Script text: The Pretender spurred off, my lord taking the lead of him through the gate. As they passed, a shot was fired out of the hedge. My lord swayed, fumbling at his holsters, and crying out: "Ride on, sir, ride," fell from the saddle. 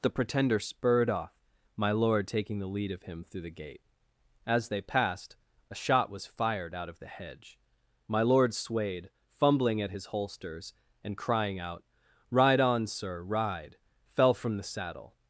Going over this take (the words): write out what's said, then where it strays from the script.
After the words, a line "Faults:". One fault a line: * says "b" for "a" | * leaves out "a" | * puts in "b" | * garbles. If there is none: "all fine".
The Pretender spurred off, my lord taking the lead of him through the gate. As they passed, a shot was fired out of the hedge. My lord swayed, fumbling at his holsters, and crying out: "Ride on, sir, ride," fell from the saddle.
Faults:
all fine